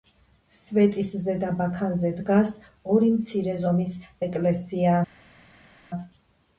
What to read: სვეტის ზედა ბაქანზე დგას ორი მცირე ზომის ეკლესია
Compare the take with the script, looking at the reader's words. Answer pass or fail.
pass